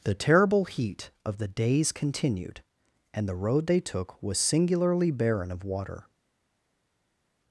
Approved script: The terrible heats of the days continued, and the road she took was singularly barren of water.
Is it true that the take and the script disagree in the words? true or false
true